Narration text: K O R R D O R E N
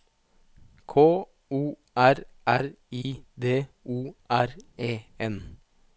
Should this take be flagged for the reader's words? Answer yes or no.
yes